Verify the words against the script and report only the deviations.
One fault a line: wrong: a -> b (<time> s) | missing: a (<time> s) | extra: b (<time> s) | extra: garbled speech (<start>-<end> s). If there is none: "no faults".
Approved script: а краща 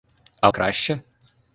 no faults